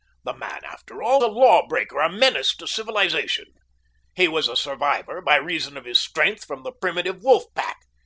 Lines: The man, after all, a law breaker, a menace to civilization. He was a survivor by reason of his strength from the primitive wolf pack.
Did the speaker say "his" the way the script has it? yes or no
yes